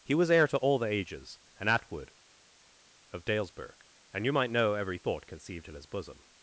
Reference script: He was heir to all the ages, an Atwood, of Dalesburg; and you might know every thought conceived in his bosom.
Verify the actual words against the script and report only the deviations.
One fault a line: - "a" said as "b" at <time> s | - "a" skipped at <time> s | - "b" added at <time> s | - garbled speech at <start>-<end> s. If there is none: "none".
none